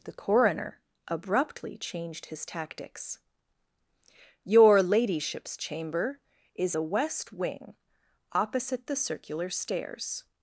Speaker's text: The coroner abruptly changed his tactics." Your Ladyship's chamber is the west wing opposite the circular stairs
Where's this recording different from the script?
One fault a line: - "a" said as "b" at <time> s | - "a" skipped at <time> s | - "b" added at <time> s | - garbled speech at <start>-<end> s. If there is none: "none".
none